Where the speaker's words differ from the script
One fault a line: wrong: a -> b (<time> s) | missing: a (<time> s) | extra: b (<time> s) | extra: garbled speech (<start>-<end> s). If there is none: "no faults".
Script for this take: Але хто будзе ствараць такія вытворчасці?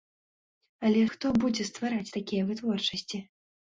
no faults